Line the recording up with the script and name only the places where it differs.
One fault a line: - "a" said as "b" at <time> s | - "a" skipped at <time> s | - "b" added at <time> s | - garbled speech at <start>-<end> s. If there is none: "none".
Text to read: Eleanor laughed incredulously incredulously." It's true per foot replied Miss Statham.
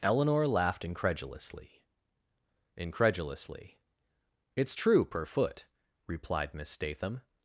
none